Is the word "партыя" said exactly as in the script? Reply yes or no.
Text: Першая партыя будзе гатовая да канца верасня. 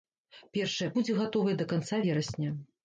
no